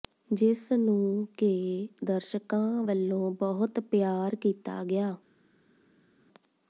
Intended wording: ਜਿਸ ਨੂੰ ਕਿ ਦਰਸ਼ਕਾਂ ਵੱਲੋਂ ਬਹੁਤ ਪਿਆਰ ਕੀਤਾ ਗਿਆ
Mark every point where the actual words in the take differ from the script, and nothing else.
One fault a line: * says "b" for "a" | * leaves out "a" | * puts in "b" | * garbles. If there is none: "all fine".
all fine